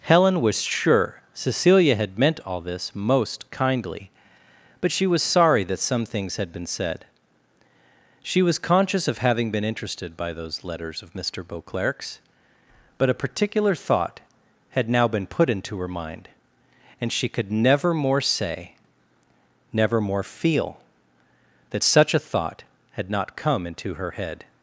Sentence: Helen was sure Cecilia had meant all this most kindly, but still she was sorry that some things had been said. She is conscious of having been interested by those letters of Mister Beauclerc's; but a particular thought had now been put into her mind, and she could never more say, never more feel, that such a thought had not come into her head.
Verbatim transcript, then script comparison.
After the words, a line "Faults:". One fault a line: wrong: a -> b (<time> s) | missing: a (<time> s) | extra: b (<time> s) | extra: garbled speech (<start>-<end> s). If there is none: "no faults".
Helen was sure Cecilia had meant all this most kindly, but she was sorry that some things had been said. She was conscious of having been interested by those letters of Mister Beauclerc's; but a particular thought had now been put into her mind, and she could never more say, never more feel, that such a thought had not come into her head.
Faults:
missing: still (4.9 s)
wrong: is -> was (8.4 s)